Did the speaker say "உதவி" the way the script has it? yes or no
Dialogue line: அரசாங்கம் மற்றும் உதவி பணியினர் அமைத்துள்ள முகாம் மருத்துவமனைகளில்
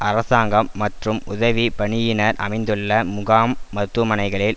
yes